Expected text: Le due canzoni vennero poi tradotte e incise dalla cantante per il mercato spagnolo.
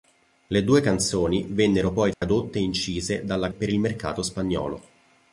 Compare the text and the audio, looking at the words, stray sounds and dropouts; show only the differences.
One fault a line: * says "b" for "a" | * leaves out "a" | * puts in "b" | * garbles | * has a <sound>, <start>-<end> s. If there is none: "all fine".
* has a dropout, 2.1-2.2 s
* leaves out "cantante"